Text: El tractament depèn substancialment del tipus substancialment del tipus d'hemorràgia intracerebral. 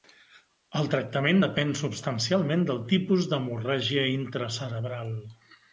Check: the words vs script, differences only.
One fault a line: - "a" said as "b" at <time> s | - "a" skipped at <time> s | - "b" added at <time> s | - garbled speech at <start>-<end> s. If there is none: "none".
- "substancialment del tipus" skipped at 3.3 s